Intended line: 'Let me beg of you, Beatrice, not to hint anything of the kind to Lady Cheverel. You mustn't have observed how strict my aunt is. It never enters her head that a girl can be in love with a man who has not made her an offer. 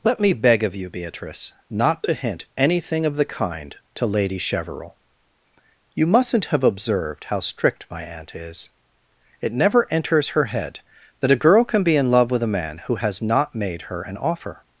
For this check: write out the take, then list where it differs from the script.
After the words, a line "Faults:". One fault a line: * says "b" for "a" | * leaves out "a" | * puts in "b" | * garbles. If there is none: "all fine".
'Let me beg of you, Beatrice, not to hint anything of the kind to Lady Cheverel. You mustn't have observed how strict my aunt is. It never enters her head that a girl can be in love with a man who has not made her an offer.
Faults:
all fine